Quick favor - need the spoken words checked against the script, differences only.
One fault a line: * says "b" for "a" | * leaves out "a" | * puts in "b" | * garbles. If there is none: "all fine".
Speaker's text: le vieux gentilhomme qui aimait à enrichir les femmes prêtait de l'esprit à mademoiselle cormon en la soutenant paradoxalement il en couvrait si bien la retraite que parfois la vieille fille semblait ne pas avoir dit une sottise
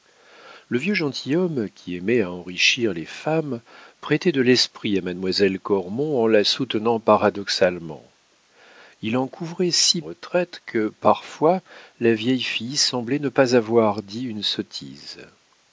* leaves out "bien la"